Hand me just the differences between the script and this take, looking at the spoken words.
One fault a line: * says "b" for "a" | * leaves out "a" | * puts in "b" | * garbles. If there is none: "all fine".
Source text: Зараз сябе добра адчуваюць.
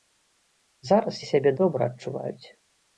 all fine